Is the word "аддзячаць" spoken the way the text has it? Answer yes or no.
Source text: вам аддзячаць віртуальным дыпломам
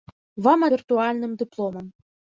no